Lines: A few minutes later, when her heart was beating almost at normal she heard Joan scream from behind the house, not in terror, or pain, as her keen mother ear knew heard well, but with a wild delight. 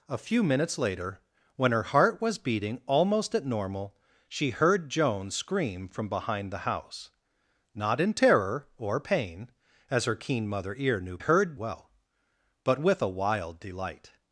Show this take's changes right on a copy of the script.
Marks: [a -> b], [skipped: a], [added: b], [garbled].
A few minutes later, when her heart was beating almost at normal she heard Joan scream from behind the house, not in terror, or pain, as her keen mother ear knew heard well, but with a wild delight.